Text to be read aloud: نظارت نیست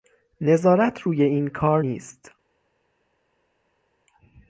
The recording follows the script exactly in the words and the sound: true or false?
false